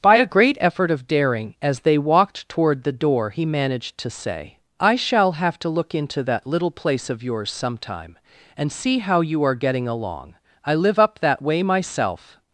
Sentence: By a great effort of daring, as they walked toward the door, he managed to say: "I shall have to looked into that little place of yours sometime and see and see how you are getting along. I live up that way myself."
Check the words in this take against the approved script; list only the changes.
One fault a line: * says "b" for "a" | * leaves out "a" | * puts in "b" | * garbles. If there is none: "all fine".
* says "look" for "looked"
* leaves out "and see"